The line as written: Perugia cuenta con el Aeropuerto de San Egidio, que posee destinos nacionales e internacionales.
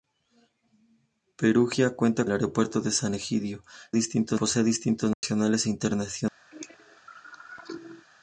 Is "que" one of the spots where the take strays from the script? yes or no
yes